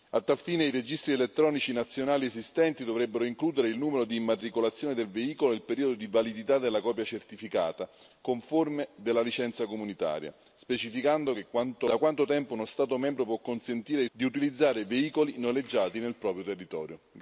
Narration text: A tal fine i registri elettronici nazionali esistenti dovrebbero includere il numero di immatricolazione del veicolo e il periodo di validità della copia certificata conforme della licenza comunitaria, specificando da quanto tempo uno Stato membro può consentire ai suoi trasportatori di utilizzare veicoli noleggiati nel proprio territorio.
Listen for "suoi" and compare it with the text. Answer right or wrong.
wrong